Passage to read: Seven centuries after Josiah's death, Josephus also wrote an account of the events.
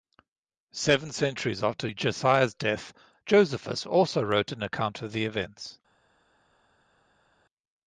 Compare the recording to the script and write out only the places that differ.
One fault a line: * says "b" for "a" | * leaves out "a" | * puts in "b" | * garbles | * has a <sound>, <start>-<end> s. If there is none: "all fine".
all fine